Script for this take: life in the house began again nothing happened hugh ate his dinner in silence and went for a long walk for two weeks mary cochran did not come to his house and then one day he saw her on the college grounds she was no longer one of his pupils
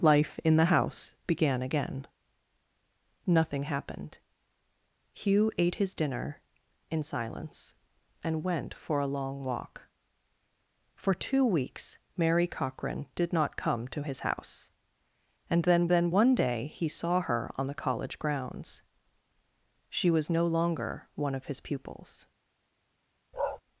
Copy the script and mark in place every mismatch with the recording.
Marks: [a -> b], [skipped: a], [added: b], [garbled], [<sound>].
life in the house began again nothing happened hugh ate his dinner in silence and went for a long walk for two weeks mary cochran did not come to his house and then [added: then] one day he saw her on the college grounds she was no longer one of his pupils [bark]